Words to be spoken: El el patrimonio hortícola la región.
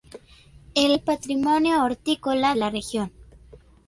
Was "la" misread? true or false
false